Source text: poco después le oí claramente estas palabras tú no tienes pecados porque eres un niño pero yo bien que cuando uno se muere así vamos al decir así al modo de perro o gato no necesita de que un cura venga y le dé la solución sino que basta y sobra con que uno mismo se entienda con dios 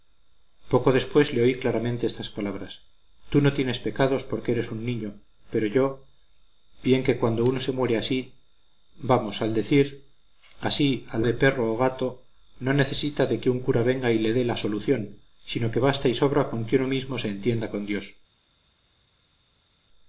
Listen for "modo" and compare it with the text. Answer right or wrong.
wrong